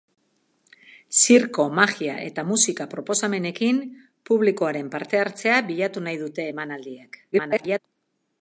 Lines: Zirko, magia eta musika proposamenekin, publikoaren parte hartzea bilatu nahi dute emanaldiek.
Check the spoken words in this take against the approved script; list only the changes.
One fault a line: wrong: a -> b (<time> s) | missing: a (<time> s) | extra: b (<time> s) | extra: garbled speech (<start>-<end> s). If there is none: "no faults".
extra: garbled speech (7.3-7.8 s)